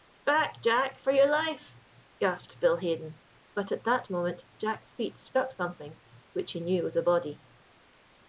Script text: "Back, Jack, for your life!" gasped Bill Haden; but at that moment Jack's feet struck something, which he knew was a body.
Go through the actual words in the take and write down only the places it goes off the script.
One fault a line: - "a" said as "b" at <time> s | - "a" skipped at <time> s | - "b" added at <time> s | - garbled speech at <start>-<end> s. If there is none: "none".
none